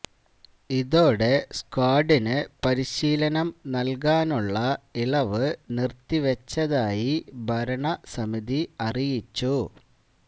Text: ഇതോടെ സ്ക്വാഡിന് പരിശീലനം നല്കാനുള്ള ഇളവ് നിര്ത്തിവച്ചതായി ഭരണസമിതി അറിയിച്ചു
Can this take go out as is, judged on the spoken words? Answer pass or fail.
pass